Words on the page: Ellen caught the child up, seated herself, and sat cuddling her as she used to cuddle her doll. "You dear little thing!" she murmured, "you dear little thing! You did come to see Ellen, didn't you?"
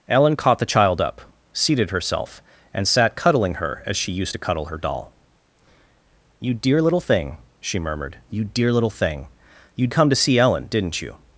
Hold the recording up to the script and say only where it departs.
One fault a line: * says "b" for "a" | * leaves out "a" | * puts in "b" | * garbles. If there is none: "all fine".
* leaves out "did"